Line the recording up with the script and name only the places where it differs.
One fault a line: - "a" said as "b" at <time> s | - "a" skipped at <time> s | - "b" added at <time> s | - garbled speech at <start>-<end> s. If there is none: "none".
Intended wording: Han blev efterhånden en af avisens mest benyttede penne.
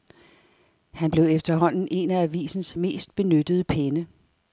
none